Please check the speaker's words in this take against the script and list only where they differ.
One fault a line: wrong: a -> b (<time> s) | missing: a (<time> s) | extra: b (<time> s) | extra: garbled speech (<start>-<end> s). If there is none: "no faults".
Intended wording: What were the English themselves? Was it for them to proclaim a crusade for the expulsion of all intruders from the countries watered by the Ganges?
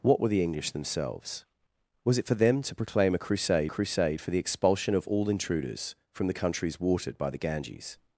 extra: crusade (3.7 s)